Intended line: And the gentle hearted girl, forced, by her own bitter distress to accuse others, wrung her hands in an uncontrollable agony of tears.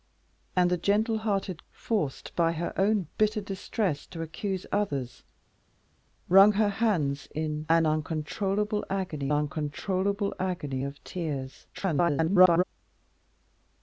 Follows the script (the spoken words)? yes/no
no